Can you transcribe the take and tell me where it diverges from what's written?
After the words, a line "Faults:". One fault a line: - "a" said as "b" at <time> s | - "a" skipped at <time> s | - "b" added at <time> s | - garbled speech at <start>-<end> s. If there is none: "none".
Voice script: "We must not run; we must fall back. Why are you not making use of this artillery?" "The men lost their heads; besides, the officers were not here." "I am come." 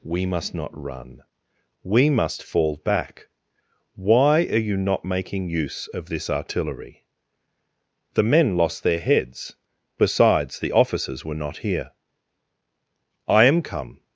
"We must not run; we must fall back. Why are you not making use of this artillery?" "The men lost their heads; besides, the officers were not here." "I am come."
Faults:
none